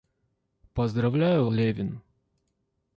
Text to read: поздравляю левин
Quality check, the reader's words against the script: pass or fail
pass